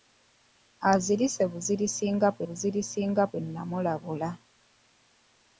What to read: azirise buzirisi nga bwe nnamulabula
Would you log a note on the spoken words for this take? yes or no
yes